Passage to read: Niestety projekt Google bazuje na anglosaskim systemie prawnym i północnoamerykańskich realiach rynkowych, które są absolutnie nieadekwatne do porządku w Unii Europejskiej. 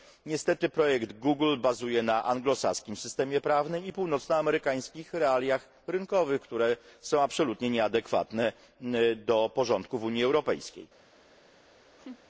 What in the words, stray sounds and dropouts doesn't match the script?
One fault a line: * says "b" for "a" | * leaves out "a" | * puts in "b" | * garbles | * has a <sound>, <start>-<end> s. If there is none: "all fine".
* has a laugh, 12.0-12.2 s